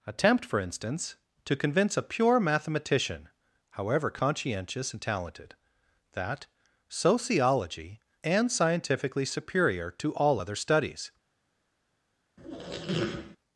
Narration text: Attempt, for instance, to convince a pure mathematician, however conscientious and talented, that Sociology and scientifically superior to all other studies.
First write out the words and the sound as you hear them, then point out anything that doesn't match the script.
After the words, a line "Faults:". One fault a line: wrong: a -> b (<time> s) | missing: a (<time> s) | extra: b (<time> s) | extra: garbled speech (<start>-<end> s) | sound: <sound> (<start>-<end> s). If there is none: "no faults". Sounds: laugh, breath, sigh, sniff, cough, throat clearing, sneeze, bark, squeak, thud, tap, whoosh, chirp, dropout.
Attempt, for instance, to convince a pure mathematician, however conscientious and talented, that Sociology and scientifically superior to all other studies.
Faults:
sound: squeak (12.4-13.4 s)